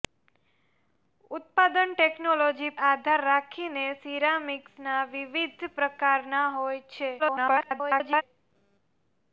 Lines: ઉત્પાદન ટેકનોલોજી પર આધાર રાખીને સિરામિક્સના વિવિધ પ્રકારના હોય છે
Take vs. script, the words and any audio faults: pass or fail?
fail